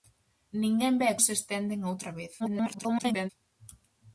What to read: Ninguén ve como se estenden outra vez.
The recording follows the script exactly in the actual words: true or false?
false